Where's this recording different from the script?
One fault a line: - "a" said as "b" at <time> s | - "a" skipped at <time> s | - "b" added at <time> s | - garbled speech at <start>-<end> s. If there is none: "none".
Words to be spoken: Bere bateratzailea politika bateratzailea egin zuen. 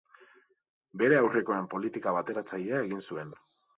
- "bateratzailea" said as "aurrekoen" at 1.2 s